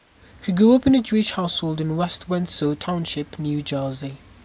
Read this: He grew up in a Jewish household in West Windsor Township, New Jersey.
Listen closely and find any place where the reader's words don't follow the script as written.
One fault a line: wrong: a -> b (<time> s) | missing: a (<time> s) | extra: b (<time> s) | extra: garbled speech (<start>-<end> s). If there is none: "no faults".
no faults